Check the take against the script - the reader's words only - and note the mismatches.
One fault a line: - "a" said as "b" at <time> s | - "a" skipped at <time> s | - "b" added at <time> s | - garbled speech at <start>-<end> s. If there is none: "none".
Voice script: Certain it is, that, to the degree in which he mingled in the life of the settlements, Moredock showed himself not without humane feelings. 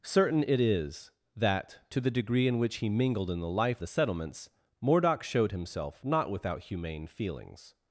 - "of" skipped at 3.8 s